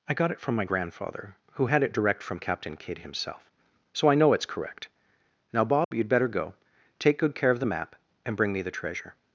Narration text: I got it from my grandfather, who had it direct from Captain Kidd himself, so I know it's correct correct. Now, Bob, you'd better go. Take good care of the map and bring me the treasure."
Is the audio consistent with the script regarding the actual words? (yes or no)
no